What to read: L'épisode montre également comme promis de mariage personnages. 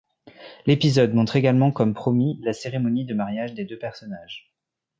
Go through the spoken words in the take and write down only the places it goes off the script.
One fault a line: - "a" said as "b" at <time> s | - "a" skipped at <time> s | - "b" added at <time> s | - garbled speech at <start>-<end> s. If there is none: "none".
- "la cérémonie" added at 2.4 s
- "des deux" added at 3.5 s